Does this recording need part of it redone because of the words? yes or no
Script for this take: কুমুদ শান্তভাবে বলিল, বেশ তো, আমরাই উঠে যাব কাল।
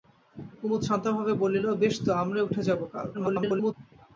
yes